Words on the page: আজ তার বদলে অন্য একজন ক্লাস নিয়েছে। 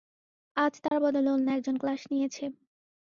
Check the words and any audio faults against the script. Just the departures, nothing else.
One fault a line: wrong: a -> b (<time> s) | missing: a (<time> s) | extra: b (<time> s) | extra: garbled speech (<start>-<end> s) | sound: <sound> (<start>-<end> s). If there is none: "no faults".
sound: dropout (0.9-0.9 s)